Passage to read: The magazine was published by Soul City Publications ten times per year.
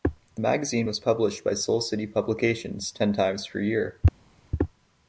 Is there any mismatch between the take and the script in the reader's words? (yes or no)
no